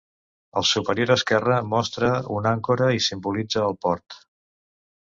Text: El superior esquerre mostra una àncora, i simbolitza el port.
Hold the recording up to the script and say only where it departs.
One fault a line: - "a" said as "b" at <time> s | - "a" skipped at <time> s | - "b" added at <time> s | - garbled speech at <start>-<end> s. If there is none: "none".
none